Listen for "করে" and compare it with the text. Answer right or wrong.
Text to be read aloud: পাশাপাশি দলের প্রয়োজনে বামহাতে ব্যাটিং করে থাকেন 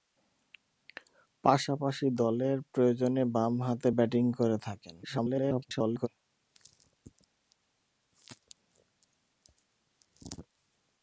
right